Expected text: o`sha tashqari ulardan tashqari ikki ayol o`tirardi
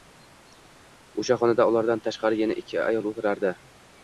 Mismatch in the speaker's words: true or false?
true